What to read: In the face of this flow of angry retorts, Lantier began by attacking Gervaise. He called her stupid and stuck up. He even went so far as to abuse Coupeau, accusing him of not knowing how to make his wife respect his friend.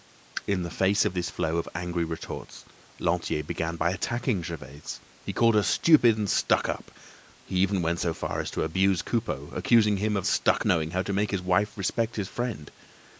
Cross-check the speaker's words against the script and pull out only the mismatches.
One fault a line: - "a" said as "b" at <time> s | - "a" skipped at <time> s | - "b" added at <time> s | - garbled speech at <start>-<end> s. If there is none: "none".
- "not" said as "stuck" at 10.2 s